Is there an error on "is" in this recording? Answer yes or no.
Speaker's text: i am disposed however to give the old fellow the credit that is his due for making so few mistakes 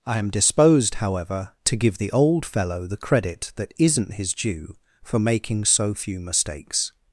yes